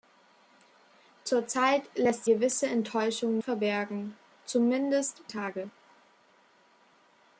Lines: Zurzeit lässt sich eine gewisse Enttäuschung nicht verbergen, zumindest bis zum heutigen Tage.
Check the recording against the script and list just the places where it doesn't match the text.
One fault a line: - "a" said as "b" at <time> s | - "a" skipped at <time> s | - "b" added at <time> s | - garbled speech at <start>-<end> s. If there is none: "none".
- "sich eine" skipped at 2.2 s
- "nicht" skipped at 3.4 s
- "bis zum heutigen" skipped at 5.2 s